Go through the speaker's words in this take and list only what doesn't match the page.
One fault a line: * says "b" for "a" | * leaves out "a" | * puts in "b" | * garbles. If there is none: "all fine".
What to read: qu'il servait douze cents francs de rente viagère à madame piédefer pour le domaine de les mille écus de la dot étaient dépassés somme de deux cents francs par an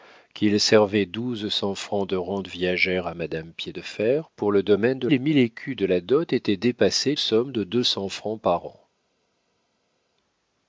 all fine